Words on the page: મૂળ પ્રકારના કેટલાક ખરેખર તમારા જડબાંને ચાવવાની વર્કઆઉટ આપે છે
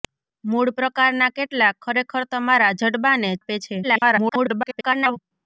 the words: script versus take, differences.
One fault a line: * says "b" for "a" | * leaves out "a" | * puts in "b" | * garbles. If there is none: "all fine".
* leaves out "ચાવવાની વર્કઆઉટ"
* garbles